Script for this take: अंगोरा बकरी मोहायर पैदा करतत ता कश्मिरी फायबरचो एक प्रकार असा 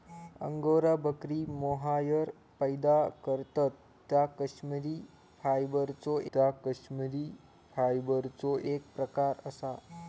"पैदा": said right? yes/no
yes